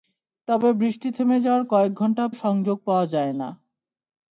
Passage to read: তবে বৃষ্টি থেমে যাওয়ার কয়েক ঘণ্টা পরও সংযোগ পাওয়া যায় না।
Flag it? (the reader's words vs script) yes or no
yes